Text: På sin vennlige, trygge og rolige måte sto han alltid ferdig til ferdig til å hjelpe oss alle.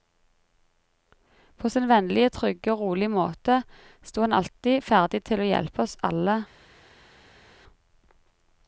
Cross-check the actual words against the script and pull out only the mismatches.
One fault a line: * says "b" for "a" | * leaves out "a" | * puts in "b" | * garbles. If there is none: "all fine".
* leaves out "ferdig til"